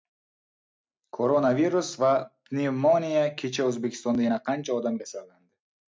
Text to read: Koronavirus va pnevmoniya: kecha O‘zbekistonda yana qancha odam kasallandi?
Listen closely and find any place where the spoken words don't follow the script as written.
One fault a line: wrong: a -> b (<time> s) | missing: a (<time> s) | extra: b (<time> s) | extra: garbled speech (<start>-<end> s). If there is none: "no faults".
no faults